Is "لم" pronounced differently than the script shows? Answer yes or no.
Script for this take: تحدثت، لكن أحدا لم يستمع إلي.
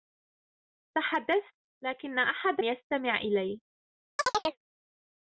yes